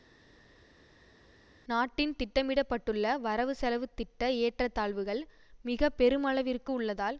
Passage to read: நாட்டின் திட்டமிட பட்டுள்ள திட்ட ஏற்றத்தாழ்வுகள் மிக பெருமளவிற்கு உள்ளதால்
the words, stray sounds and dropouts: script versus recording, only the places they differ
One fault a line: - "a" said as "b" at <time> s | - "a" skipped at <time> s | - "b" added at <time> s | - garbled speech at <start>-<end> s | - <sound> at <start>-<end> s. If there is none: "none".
- "வரவு செலவு" added at 3.2 s